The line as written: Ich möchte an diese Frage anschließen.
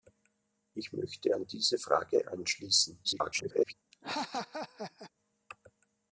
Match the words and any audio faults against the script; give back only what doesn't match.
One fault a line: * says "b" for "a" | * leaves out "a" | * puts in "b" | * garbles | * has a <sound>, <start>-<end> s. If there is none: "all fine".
* garbles
* has a laugh, 3.9-5.1 s